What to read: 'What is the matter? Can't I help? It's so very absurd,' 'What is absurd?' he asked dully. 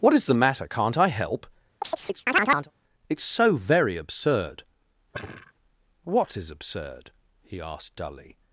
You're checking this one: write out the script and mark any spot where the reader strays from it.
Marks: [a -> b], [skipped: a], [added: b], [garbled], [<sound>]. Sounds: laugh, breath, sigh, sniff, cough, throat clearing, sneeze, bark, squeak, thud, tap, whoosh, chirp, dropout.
'What is the matter? Can't I help? [chirp] It's so very absurd,' [sigh] 'What is absurd?' he asked dully.